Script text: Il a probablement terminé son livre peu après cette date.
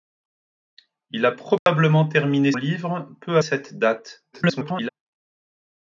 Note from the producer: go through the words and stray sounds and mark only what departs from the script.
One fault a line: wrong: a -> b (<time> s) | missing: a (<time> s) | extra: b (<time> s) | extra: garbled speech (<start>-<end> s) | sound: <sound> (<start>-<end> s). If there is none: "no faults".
sound: dropout (1.6-1.7 s)
missing: son (2.5 s)
missing: après (3.4 s)
extra: garbled speech (4.3-4.9 s)